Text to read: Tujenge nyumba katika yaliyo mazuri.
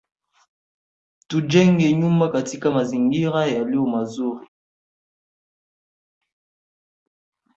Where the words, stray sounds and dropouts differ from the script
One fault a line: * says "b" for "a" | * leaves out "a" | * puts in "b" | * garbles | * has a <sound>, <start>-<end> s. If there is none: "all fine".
* puts in "mazingira"